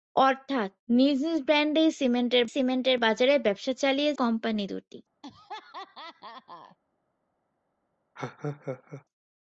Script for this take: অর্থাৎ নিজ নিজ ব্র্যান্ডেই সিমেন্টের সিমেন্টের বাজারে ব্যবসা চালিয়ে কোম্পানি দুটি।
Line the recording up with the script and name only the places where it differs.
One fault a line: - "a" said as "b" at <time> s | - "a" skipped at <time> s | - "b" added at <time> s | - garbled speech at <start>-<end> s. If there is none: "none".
none